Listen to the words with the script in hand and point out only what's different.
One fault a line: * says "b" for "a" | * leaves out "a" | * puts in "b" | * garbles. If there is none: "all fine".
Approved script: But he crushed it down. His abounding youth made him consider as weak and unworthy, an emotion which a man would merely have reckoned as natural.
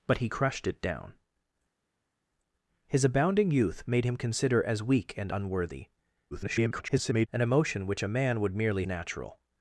* garbles
* leaves out "have reckoned as"